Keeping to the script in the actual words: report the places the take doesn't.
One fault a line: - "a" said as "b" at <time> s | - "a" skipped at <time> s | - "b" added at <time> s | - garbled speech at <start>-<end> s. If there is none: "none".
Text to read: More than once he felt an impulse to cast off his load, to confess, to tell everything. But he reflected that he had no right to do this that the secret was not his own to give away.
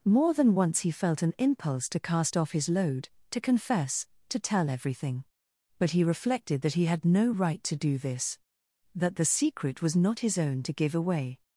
none